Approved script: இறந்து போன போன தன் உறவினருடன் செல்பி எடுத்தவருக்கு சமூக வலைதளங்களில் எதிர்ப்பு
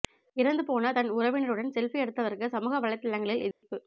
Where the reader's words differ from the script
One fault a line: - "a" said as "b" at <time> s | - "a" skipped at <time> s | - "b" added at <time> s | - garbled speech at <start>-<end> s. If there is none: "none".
- "போன" skipped at 0.9 s